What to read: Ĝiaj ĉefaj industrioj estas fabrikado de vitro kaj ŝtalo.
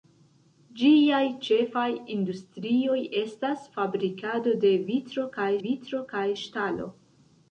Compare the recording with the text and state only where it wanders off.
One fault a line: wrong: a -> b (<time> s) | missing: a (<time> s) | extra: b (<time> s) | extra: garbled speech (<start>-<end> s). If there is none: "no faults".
extra: vitro kaj (5.6 s)